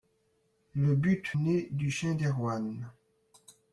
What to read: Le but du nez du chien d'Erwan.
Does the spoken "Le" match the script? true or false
true